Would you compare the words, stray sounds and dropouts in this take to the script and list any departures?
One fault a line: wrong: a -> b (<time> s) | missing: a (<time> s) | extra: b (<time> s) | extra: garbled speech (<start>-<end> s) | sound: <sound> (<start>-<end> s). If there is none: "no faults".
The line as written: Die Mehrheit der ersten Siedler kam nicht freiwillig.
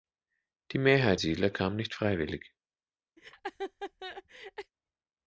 missing: der ersten (1.2 s)
sound: laugh (3.2-4.7 s)